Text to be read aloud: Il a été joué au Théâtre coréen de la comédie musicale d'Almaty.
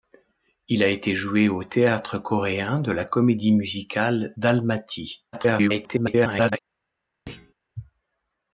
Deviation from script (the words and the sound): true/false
true